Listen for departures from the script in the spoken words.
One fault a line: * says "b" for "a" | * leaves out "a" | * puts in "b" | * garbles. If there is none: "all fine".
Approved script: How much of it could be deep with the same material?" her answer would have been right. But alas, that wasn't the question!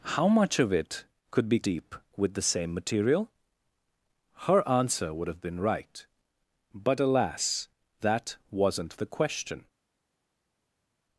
all fine